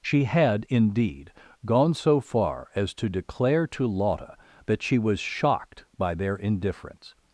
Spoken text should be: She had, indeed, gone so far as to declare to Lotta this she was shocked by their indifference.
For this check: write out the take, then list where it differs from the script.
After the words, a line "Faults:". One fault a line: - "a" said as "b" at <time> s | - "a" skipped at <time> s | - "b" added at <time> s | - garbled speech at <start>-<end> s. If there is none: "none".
She had, indeed, gone so far as to declare to Lotta that she was shocked by their indifference.
Faults:
- "this" said as "that" at 4.7 s